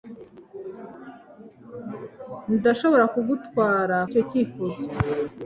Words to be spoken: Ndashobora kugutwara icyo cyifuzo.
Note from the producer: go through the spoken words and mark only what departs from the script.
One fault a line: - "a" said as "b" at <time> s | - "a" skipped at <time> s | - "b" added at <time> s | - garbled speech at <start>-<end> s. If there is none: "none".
none